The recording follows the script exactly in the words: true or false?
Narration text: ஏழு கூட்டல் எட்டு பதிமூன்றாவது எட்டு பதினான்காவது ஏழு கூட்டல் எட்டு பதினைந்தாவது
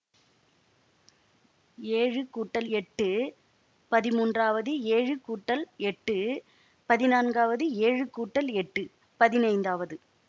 false